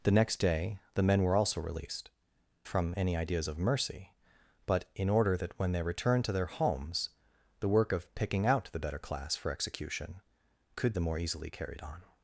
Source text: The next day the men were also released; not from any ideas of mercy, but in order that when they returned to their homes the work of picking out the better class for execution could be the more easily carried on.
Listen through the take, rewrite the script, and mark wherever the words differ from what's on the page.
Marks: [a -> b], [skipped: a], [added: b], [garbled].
The next day the men were also released; [skipped: not] from any ideas of mercy, but in order that when they returned to their homes the work of picking out the better class for execution could [skipped: be] the more easily carried on.